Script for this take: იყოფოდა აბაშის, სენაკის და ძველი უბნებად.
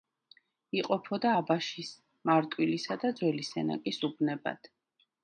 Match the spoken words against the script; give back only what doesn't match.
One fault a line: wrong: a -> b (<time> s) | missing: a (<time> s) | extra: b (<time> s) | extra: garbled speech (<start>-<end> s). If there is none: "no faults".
wrong: სენაკის -> მარტვილისა (2.3 s)
extra: სენაკის (3.5 s)